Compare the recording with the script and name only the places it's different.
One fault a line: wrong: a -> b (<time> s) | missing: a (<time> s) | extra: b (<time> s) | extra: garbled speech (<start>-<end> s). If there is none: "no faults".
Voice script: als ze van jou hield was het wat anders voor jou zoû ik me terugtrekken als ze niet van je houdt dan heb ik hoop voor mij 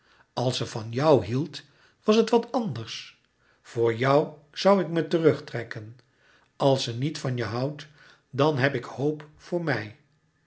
no faults